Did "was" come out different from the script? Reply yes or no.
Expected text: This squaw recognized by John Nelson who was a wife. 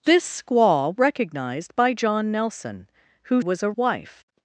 no